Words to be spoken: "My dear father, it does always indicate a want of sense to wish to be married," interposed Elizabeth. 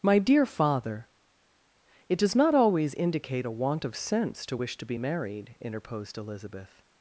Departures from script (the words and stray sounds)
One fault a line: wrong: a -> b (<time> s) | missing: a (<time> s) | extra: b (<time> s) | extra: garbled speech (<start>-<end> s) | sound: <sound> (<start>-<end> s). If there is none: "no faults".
extra: not (2.4 s)